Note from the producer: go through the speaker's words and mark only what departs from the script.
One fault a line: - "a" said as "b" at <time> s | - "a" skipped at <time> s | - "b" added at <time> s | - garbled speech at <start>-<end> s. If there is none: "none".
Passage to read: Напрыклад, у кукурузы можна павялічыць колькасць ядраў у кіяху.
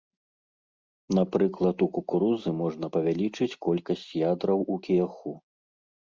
none